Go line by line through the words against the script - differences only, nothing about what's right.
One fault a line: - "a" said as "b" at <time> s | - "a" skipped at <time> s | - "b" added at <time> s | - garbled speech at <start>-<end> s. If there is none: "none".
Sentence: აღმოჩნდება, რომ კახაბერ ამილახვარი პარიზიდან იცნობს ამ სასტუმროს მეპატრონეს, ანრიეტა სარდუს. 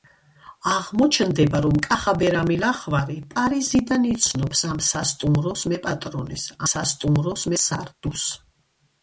- "ანრიეტა" said as "სასტუმროს" at 6.7 s